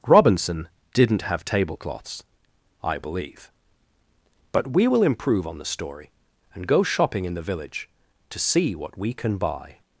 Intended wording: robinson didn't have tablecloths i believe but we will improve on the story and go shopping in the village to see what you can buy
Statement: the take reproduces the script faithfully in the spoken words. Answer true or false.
false